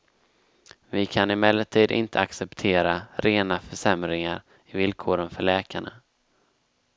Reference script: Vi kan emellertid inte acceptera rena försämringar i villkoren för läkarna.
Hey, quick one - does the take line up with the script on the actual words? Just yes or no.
yes